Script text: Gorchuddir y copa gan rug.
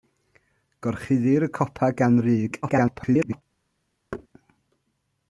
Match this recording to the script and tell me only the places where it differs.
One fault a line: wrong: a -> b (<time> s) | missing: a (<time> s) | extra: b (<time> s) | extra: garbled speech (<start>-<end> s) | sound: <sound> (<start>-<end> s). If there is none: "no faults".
extra: garbled speech (2.6-3.4 s)
sound: thud (4.1-4.3 s)